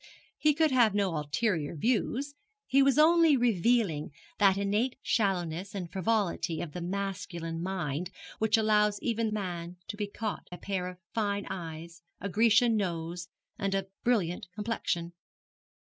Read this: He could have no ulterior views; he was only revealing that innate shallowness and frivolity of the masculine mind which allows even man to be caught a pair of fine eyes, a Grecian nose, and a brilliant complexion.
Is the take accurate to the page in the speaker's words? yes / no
yes